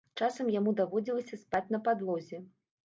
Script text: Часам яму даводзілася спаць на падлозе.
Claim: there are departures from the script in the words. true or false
false